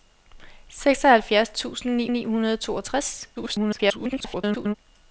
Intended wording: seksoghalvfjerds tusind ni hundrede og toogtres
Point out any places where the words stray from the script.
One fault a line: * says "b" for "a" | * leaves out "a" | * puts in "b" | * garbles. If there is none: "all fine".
* puts in "ni"
* garbles